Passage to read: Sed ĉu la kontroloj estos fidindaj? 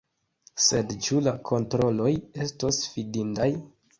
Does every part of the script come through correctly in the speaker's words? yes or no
yes